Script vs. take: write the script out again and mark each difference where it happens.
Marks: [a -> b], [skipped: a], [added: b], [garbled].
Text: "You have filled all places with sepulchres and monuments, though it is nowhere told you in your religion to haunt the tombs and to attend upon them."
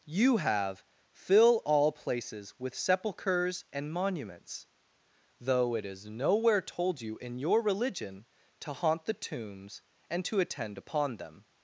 "You have [filled -> fill] all places with sepulchres and monuments, though it is nowhere told you in your religion to haunt the tombs and to attend upon them."